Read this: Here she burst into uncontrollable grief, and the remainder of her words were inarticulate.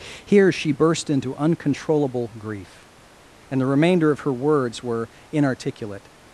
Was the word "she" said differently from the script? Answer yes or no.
no